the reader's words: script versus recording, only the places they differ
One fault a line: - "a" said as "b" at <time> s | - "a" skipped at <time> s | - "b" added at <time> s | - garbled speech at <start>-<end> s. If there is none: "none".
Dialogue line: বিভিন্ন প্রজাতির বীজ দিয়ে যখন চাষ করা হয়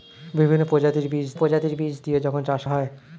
- "প্রজাতির বীজ" added at 1.3 s
- "করা" skipped at 2.6 s